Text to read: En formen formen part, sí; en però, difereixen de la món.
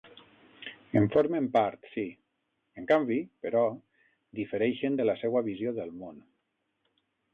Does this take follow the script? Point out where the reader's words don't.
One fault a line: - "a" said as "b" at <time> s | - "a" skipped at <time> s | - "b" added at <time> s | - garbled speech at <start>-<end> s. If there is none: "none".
- "formen" skipped at 1.5 s
- "canvi" added at 2.9 s
- "seua visió del" added at 5.2 s